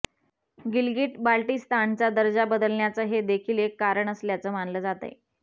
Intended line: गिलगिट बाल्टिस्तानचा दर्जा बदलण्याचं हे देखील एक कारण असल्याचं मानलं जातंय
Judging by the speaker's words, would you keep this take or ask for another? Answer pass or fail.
pass